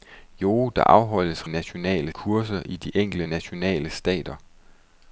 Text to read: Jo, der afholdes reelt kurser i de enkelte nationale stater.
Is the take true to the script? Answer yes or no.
no